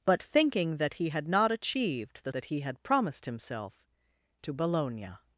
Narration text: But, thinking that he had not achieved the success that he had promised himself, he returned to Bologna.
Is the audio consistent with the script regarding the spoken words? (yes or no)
no